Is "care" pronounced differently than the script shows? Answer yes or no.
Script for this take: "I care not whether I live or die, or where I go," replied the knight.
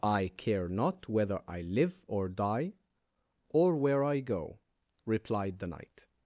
no